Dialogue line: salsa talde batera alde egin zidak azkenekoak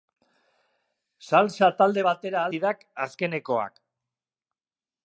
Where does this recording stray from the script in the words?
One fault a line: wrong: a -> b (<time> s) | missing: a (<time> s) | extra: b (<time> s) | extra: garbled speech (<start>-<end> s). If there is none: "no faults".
missing: alde egin (2.5 s)